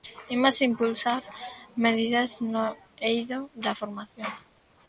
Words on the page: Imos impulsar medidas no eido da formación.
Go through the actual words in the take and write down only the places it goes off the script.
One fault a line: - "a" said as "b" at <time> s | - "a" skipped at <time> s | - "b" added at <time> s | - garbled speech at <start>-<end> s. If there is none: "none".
none